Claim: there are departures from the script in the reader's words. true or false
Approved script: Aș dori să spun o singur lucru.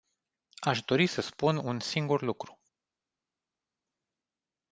true